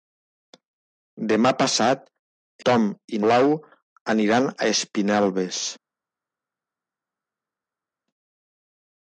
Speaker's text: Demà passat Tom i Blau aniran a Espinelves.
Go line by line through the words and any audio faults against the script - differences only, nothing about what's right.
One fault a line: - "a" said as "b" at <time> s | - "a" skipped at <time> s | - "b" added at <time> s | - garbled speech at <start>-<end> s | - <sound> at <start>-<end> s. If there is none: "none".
none